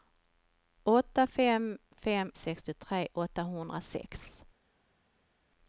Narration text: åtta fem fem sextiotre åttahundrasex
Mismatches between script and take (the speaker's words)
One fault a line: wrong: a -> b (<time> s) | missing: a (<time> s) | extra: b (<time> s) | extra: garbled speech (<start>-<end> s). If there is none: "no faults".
no faults